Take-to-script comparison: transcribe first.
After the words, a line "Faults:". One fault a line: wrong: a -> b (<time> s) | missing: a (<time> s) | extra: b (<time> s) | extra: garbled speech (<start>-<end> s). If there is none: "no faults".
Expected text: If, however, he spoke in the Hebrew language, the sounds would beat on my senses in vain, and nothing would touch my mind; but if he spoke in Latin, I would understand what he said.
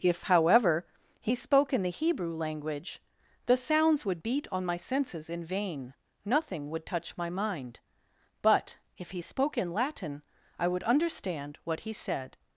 If, however, he spoke in the Hebrew language, the sounds would beat on my senses in vain, nothing would touch my mind; but if he spoke in Latin, I would understand what he said.
Faults:
missing: and (5.9 s)